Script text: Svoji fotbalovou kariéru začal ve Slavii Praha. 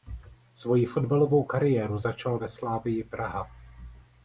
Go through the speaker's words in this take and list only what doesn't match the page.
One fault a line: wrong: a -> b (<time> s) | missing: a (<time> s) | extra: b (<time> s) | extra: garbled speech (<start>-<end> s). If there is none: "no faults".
no faults